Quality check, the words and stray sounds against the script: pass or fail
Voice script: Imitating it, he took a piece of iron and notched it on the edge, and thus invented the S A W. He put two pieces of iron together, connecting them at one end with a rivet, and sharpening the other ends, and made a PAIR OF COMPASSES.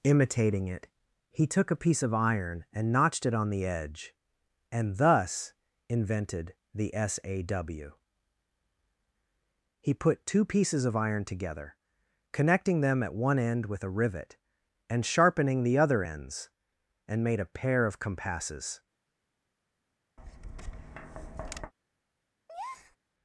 fail